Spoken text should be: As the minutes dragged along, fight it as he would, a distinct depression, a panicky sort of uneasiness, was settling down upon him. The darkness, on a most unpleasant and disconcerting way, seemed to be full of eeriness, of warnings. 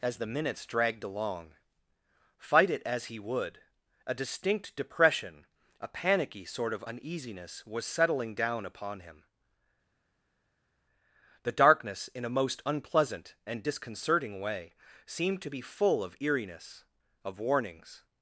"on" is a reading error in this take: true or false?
true